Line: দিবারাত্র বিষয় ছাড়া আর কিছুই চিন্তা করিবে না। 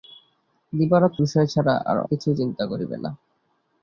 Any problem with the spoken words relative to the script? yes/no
no